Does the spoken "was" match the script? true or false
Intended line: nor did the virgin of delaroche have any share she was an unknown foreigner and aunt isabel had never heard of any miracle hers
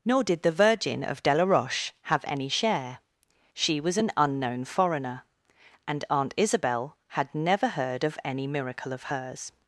true